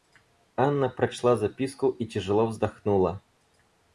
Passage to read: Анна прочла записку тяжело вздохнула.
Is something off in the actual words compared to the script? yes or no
yes